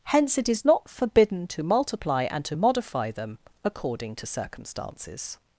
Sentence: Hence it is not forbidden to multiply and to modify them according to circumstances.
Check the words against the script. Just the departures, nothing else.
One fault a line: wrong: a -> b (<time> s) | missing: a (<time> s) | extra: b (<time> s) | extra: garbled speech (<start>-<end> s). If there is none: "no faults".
no faults